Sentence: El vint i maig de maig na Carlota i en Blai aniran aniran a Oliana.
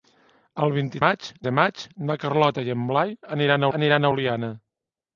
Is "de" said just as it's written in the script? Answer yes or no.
yes